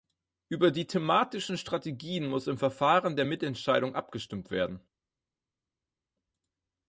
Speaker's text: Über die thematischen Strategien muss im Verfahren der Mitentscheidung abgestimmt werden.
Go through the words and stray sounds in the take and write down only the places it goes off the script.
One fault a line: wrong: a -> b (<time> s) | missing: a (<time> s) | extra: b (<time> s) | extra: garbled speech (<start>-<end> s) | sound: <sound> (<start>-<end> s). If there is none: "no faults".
no faults